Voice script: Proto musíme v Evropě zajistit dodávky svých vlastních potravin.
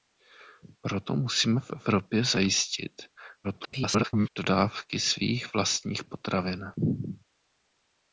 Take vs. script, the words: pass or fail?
fail